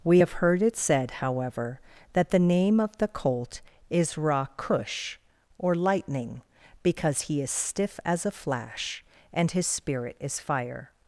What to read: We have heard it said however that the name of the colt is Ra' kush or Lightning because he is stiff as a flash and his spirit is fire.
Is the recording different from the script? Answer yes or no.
no